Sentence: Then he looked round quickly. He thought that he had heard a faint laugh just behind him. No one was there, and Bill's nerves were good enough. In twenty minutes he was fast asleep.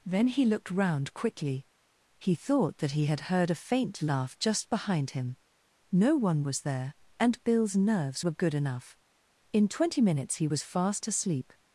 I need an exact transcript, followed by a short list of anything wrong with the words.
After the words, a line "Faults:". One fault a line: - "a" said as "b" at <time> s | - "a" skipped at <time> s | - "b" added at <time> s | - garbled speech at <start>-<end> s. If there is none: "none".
Then he looked round quickly. He thought that he had heard a faint laugh just behind him. No one was there, and Bill's nerves were good enough. In twenty minutes he was fast asleep.
Faults:
none